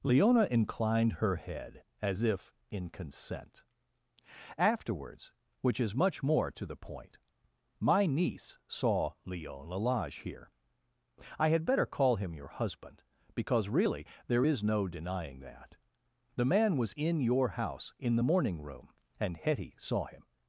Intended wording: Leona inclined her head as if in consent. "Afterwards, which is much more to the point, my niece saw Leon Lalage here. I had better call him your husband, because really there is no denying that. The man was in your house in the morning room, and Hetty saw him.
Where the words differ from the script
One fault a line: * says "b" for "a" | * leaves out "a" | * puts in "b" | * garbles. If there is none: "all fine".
all fine